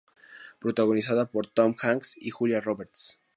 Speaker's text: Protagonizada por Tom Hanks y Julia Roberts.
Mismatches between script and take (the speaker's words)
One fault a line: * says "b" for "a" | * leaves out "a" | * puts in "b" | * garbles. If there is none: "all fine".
all fine